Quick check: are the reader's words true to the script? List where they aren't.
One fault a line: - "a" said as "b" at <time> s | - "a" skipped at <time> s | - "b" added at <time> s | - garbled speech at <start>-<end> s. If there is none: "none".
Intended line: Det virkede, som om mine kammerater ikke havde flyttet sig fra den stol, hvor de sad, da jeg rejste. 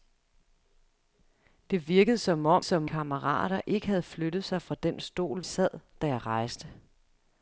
- "mine" said as "som" at 2.6 s
- "hvor de" skipped at 5.4 s